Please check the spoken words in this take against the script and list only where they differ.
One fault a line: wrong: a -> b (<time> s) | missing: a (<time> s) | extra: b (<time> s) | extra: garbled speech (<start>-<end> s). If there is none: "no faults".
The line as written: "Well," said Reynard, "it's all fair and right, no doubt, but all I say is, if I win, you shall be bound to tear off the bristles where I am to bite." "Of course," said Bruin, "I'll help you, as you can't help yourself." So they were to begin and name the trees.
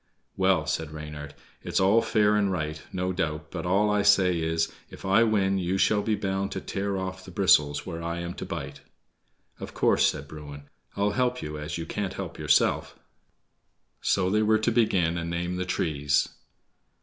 no faults